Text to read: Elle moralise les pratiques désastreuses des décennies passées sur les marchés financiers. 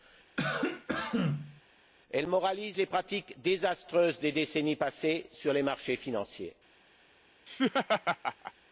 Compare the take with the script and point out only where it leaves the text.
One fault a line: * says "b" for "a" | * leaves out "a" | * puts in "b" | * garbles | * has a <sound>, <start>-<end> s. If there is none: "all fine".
* has a cough, 0.4-1.6 s
* has a laugh, 7.5-8.5 s